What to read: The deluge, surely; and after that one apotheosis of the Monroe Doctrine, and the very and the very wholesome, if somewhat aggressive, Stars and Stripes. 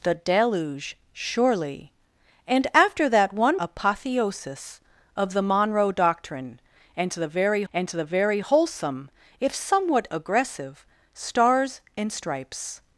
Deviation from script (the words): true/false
false